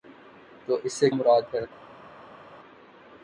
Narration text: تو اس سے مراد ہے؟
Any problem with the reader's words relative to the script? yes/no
no